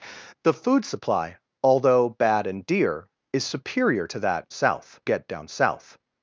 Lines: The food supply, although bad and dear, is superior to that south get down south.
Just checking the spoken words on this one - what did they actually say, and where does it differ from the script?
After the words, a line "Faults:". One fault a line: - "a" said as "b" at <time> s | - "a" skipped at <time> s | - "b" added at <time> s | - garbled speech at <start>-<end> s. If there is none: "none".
The food supply, although bad and dear, is superior to that south get down south.
Faults:
none